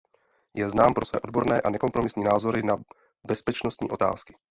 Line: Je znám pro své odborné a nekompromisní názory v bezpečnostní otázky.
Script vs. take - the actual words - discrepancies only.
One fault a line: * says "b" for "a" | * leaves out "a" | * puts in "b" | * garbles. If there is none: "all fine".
* says "na" for "v"